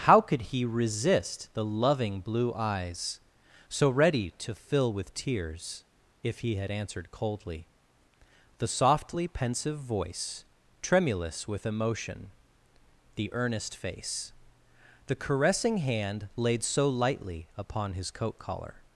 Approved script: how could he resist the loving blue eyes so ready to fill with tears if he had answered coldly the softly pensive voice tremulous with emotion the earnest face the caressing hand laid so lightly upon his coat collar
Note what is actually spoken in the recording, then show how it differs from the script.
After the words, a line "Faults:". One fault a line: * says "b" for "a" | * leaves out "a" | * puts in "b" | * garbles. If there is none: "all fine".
how could he resist the loving blue eyes so ready to fill with tears if he had answered coldly the softly pensive voice tremulous with emotion the earnest face the caressing hand laid so lightly upon his coat collar
Faults:
all fine